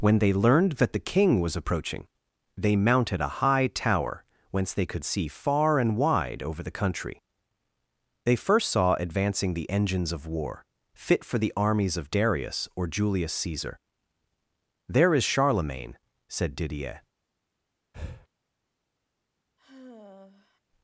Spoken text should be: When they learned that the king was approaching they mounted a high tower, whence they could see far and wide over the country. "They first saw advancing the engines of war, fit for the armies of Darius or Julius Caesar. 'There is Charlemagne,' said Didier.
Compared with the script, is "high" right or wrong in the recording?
right